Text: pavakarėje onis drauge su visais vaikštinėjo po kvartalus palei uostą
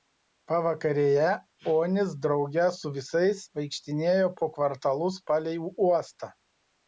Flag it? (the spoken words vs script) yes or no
no